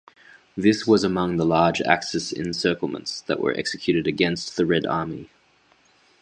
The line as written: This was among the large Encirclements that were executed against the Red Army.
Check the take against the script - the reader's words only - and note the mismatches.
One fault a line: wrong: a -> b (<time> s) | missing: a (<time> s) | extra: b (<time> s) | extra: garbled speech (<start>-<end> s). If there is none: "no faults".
extra: Axis (1.8 s)